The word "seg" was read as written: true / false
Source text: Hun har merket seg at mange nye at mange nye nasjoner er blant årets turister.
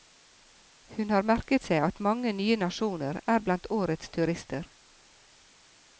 true